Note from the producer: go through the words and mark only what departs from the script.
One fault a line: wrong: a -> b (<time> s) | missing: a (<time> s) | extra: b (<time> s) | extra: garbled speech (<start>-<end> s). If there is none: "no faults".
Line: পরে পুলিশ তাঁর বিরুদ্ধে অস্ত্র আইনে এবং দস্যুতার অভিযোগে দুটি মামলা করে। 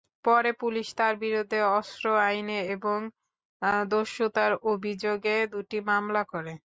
no faults